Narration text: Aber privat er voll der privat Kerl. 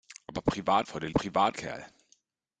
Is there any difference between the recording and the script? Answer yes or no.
no